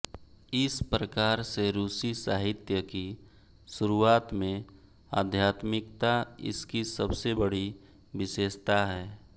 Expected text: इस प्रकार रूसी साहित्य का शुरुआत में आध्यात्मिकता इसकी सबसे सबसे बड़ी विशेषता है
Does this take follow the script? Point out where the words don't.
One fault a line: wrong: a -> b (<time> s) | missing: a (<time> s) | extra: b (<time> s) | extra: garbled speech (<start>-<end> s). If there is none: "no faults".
extra: से (1.4 s)
wrong: का -> की (2.8 s)
missing: सबसे (7.3 s)